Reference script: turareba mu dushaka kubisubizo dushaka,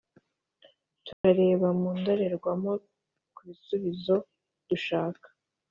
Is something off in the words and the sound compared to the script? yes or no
yes